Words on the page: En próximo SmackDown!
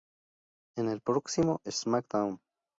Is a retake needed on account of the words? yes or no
yes